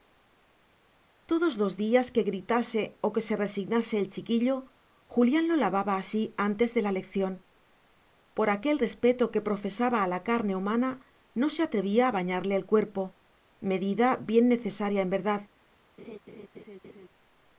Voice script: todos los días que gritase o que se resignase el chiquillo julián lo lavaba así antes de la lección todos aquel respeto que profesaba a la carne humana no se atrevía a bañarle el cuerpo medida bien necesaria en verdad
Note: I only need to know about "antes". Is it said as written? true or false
true